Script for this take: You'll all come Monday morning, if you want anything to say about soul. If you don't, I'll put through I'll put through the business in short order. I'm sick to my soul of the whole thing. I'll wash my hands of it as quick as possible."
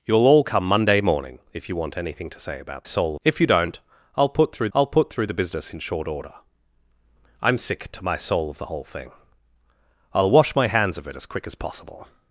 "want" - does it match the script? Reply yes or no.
yes